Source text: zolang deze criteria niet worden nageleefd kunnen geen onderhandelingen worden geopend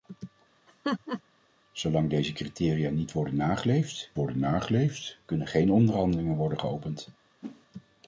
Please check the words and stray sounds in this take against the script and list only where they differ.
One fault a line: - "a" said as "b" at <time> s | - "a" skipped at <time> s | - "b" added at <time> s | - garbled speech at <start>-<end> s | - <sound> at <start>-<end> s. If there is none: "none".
- laugh at 0.7-1.2 s
- "worden nageleefd" added at 4.1 s
- whoosh at 7.4-7.7 s